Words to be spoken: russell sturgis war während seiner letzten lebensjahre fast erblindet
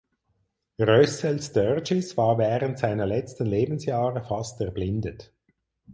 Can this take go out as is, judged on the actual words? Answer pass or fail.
pass